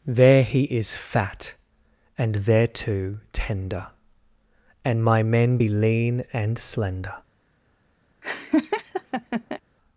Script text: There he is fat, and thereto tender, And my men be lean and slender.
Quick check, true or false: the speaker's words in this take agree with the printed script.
true